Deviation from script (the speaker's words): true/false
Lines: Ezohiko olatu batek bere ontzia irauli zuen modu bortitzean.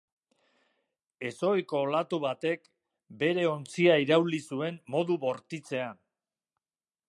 false